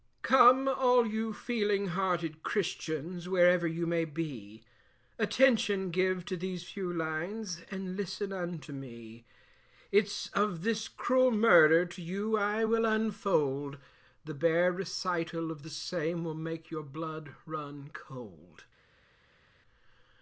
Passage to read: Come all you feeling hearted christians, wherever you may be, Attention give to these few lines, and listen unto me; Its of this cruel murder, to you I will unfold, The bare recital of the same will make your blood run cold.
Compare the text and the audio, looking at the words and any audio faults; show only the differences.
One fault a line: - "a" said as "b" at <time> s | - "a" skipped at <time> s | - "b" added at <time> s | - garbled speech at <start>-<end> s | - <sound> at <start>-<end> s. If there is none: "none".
none